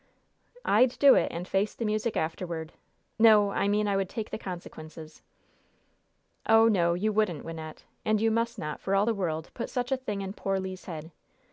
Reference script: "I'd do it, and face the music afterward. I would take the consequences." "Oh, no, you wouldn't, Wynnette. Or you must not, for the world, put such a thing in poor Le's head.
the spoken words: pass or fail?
fail